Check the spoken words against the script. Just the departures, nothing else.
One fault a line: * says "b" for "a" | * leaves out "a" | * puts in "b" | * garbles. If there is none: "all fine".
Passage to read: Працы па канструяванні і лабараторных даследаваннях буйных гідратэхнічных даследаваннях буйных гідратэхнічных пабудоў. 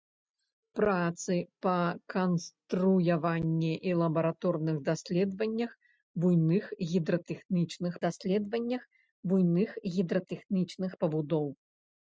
all fine